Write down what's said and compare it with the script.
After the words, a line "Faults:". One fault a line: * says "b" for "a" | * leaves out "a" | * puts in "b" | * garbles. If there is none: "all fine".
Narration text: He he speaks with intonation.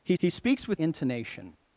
He he speaks with intonation.
Faults:
all fine